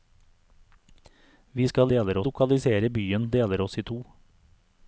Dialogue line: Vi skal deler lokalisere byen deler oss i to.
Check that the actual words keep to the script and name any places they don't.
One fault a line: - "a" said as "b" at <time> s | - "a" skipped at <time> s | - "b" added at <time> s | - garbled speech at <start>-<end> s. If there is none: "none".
none